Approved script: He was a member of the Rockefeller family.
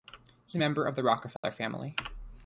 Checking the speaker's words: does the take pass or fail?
fail